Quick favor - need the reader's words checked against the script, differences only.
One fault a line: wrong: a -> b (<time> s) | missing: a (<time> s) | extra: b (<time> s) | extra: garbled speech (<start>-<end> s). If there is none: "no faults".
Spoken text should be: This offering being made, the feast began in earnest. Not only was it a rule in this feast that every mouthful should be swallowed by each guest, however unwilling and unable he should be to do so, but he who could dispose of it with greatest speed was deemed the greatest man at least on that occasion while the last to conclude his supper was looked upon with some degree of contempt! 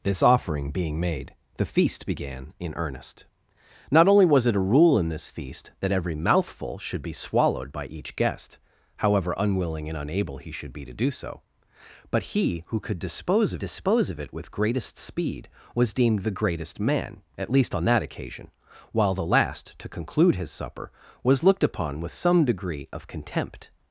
extra: dispose of (13.6 s)